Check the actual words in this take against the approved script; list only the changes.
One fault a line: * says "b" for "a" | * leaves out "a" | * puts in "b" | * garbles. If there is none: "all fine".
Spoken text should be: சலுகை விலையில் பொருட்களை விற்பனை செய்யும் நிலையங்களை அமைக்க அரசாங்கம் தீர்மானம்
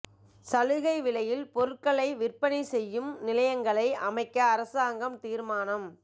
all fine